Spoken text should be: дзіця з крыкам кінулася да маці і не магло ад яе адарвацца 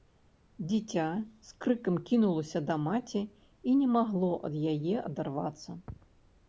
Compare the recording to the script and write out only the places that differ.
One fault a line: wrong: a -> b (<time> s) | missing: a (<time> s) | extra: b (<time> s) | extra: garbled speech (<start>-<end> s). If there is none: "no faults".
no faults